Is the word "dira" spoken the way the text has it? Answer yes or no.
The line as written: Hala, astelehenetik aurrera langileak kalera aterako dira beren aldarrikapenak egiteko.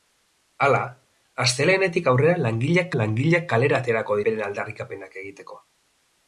no